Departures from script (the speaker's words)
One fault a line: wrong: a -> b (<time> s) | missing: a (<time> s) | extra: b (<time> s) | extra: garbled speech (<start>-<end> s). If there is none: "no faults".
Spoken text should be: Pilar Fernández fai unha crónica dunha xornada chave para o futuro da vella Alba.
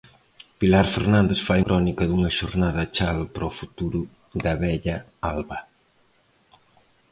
missing: unha (1.6 s)